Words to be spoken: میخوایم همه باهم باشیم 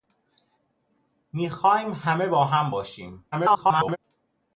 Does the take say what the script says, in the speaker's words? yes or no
no